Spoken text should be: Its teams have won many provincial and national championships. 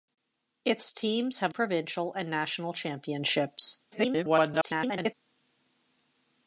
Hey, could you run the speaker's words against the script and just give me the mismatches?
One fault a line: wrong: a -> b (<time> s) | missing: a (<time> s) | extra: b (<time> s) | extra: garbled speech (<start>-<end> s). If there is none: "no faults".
missing: won many (1.5 s)
extra: garbled speech (3.9-5.1 s)